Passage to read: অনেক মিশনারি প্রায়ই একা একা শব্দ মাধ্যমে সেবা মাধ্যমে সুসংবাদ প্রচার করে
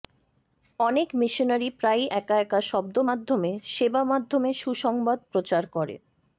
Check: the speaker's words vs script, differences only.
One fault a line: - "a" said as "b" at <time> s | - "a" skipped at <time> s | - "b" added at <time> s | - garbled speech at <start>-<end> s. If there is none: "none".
none